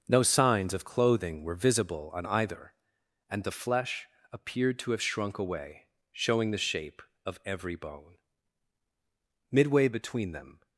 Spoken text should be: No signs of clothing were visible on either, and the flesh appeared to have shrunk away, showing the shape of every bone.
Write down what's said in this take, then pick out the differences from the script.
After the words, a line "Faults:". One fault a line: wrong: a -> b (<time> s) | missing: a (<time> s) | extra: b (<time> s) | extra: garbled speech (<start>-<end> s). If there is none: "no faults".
No signs of clothing were visible on either, and the flesh appeared to have shrunk away, showing the shape of every bone. Midway between them
Faults:
extra: Midway between them (9.5 s)